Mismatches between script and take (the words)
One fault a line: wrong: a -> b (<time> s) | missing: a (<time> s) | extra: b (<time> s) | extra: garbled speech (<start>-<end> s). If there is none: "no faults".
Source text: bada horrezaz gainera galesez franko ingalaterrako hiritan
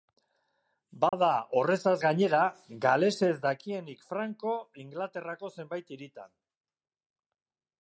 extra: dakienik (3.5 s)
extra: zenbait (5.6 s)